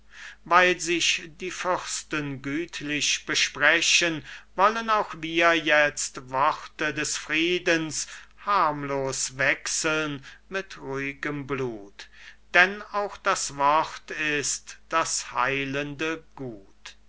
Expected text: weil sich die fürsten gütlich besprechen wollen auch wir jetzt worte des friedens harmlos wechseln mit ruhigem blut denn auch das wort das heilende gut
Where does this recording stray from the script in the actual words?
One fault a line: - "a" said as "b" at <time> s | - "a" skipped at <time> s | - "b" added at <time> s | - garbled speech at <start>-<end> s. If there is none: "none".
- "ist" added at 14.1 s